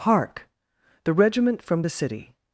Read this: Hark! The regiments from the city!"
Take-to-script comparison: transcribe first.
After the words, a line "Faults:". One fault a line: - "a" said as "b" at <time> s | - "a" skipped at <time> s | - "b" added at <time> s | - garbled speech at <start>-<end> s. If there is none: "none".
Hark! The regiment from the city!"
Faults:
- "regiments" said as "regiment" at 1.1 s